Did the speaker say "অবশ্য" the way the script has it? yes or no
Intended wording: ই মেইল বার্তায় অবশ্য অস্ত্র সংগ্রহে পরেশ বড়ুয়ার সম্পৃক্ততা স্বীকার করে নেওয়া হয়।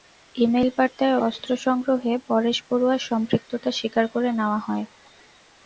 no